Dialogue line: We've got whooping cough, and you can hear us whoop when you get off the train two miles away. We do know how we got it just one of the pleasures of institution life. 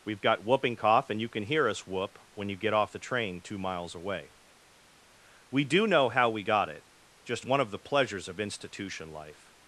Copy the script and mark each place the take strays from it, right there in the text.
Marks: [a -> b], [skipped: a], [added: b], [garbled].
We've got whooping cough, and you can hear us whoop when you get off the train two miles away. We do know how we got it just one of the pleasures of institution life.